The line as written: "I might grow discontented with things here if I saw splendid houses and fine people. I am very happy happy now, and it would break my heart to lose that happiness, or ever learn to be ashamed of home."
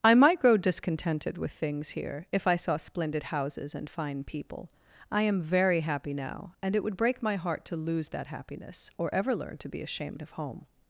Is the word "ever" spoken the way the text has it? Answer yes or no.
yes